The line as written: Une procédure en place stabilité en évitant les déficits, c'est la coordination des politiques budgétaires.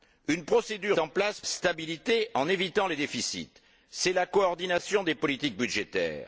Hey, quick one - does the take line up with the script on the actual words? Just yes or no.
yes